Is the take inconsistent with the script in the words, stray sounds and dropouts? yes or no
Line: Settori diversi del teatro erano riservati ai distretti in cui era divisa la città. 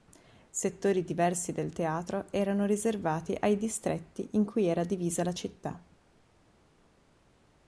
no